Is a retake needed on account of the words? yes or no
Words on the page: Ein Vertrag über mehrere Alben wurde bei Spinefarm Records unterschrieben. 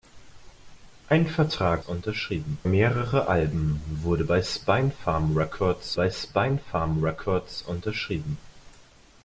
yes